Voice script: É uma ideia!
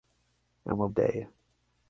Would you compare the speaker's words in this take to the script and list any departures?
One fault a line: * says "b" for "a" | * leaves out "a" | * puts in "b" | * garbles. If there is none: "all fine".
all fine